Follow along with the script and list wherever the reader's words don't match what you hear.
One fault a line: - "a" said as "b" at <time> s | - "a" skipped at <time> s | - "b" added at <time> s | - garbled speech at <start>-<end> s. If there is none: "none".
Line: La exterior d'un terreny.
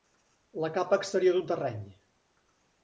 - "capa" added at 0.8 s